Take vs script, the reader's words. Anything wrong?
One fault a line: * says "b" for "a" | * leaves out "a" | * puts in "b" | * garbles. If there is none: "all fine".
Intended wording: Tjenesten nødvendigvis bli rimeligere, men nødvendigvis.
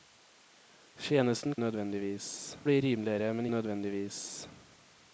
all fine